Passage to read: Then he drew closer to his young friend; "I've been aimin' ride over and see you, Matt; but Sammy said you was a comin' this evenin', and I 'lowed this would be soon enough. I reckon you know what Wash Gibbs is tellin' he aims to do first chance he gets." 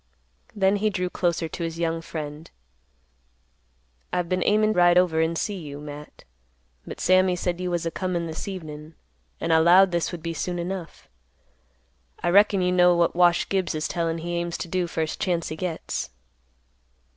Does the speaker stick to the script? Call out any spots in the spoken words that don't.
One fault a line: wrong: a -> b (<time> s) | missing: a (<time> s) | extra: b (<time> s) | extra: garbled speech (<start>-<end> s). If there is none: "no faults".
no faults